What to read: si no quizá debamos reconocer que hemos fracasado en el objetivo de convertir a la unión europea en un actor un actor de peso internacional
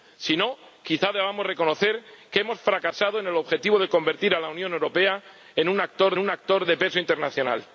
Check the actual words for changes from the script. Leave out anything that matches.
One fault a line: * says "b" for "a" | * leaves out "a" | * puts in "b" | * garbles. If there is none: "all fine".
all fine